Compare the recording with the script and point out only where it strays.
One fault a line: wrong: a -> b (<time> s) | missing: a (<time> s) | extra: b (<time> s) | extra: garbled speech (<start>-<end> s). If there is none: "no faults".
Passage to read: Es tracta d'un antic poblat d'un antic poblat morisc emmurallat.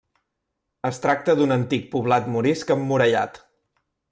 missing: d'un antic poblat (2.3 s)